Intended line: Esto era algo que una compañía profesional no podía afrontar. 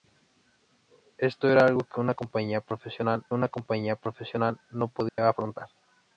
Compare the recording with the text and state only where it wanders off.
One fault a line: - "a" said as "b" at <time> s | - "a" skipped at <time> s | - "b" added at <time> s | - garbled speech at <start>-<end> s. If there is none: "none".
- "una compañía profesional" added at 3.3 s